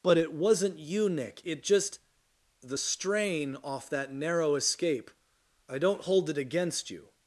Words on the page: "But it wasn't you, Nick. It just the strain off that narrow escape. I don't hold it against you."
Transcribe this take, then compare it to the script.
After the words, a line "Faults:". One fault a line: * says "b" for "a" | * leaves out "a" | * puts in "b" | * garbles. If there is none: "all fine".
"But it wasn't you, Nick. It just the strain off that narrow escape. I don't hold it against you."
Faults:
all fine